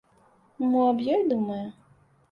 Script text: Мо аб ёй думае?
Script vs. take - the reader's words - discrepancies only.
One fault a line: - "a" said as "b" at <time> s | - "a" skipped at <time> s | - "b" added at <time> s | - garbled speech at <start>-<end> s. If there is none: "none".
none